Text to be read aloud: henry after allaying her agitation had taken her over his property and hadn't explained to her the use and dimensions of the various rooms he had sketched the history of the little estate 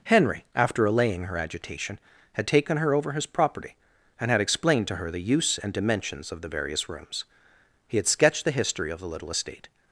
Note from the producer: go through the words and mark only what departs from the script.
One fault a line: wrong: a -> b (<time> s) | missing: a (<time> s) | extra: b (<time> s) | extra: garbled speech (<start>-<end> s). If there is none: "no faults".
wrong: hadn't -> had (4.3 s)